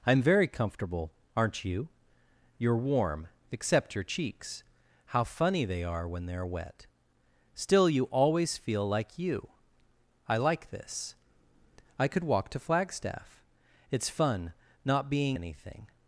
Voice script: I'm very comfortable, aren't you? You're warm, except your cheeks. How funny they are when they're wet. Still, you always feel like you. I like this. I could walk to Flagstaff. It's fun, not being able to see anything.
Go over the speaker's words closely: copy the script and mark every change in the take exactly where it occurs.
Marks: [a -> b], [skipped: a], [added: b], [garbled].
I'm very comfortable, aren't you? You're warm, except your cheeks. How funny they are when they're wet. Still, you always feel like you. I like this. I could walk to Flagstaff. It's fun, not being [skipped: able to see] anything.